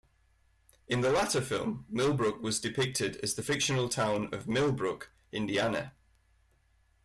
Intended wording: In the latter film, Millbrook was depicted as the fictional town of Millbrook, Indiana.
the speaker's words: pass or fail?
pass